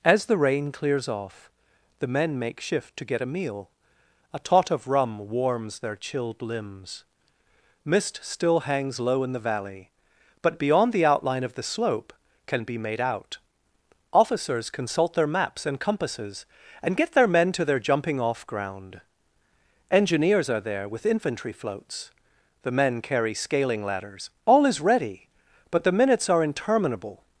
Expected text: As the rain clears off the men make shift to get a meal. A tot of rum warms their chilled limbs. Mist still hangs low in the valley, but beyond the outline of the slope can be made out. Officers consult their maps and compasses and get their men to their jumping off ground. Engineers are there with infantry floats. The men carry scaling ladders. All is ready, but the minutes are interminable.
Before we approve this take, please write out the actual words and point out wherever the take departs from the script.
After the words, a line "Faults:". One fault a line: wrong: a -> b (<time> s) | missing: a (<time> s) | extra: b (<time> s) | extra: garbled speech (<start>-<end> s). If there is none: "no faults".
As the rain clears off the men make shift to get a meal. A tot of rum warms their chilled limbs. Mist still hangs low in the valley, but beyond the outline of the slope can be made out. Officers consult their maps and compasses and get their men to their jumping off ground. Engineers are there with infantry floats. The men carry scaling ladders. All is ready, but the minutes are interminable.
Faults:
no faults